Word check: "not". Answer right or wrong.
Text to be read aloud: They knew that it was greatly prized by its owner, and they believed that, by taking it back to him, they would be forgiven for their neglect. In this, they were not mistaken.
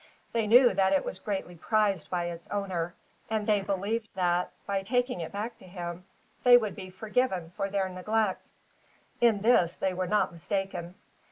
right